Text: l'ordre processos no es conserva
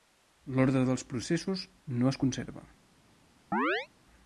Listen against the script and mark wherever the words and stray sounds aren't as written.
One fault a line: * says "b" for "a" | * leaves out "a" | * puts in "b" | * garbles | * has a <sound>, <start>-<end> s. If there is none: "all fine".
* puts in "dels"
* has a chirp, 3.5-3.9 s